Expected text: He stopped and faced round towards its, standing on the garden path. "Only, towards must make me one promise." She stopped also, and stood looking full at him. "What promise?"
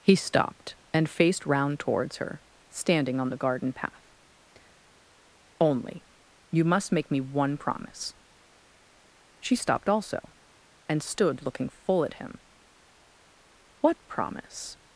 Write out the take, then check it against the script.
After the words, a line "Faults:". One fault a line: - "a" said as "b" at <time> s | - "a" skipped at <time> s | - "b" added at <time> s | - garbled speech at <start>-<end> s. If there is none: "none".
He stopped and faced round towards her, standing on the garden path. "Only, you must make me one promise." She stopped also, and stood looking full at him. "What promise?"
Faults:
- "its" said as "her" at 2.2 s
- "towards" said as "you" at 6.5 s